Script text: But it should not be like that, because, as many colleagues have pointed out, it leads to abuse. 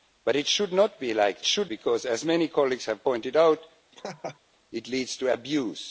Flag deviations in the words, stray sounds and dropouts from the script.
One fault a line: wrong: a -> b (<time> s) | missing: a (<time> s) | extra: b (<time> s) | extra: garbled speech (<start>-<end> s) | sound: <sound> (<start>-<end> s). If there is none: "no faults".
wrong: that -> should (1.4 s)
sound: laugh (3.9-4.4 s)